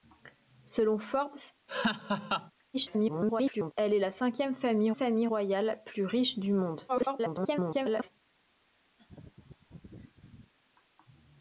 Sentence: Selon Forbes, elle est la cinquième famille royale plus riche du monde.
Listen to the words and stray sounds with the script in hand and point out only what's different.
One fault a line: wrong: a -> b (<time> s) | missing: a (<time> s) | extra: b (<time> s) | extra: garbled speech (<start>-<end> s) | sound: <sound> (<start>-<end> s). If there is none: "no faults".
sound: laugh (1.7-2.5 s)
extra: garbled speech (2.7-3.7 s)
extra: famille (4.9 s)
extra: garbled speech (6.9-8.1 s)
sound: laugh (9.0-10.5 s)